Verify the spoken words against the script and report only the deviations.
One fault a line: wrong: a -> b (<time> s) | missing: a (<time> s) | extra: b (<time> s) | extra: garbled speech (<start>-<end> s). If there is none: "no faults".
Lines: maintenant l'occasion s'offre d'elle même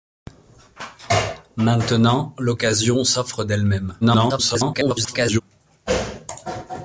extra: garbled speech (4.0-5.4 s)